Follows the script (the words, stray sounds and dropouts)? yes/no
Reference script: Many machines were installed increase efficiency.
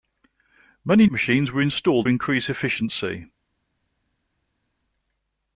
yes